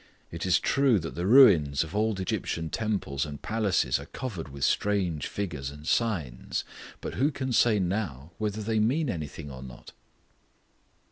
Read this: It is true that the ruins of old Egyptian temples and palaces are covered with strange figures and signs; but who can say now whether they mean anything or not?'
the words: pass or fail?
pass